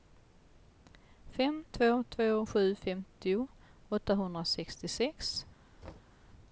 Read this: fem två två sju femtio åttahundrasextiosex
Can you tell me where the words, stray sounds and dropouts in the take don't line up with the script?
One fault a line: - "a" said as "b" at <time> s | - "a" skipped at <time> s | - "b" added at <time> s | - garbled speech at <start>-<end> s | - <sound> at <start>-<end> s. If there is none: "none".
- thud at 5.8-6.2 s